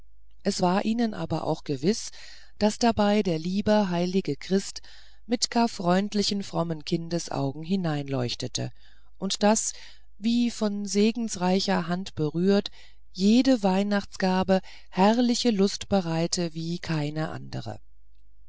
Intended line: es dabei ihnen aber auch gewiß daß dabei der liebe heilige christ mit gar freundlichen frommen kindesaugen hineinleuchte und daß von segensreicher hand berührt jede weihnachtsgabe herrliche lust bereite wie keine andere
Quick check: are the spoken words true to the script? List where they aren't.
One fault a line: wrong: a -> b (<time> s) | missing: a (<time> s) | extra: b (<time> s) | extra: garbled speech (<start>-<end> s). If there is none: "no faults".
wrong: dabei -> war (0.6 s)
extra: wie (10.2 s)